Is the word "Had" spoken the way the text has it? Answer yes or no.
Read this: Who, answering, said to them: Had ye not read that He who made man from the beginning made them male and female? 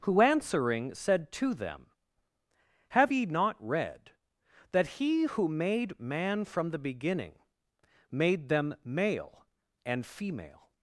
no